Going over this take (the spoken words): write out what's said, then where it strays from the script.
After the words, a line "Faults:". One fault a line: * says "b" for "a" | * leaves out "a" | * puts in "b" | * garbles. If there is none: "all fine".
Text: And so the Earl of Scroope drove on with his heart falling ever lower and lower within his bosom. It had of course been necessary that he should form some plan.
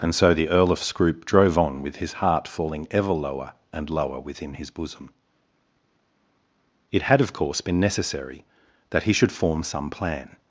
And so the Earl of Scroope drove on with his heart falling ever lower and lower within his bosom. It had of course been necessary that he should form some plan.
Faults:
all fine